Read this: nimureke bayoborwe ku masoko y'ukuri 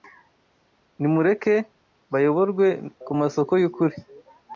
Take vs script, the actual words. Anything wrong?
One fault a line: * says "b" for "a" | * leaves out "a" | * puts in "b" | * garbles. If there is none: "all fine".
all fine